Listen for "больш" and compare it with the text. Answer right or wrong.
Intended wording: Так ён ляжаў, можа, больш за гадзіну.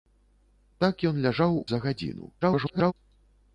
wrong